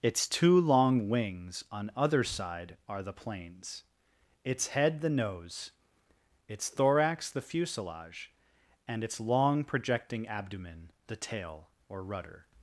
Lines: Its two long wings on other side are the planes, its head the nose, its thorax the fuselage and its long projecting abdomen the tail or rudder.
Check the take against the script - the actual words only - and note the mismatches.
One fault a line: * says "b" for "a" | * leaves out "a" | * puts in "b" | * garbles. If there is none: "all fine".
all fine